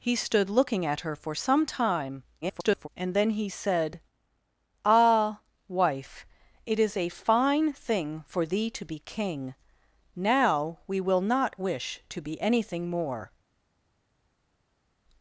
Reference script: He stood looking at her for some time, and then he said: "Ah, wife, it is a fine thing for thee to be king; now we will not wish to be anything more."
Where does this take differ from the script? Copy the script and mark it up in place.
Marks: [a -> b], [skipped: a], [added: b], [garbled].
He stood looking at her for some time, [garbled] and then he said: "Ah, wife, it is a fine thing for thee to be king; now we will not wish to be anything more."